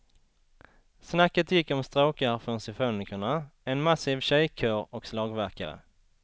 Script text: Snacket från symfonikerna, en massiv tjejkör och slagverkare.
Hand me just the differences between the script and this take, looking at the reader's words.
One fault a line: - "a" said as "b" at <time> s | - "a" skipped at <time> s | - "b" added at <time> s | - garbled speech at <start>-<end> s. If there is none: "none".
- "gick om stråkar" added at 1.5 s